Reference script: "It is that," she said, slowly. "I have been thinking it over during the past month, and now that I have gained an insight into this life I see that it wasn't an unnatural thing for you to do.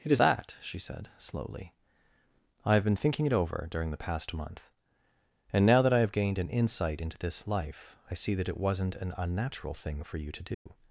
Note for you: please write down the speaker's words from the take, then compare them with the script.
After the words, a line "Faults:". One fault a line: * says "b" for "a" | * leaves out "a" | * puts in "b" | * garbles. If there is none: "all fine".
"It is that," she said, slowly. "I have been thinking it over during the past month, and now that I have gained an insight into this life I see that it wasn't an unnatural thing for you to do.
Faults:
all fine